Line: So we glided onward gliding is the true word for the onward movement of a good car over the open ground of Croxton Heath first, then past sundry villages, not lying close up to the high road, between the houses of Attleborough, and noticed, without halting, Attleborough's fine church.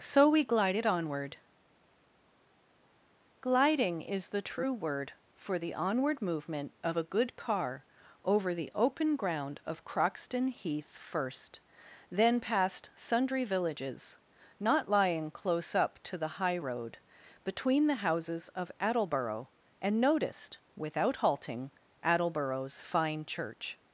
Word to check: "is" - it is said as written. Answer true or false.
true